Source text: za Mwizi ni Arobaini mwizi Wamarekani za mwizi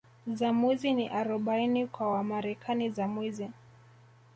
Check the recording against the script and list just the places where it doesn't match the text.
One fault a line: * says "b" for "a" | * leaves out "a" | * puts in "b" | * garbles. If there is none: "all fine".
* says "kwa" for "mwizi"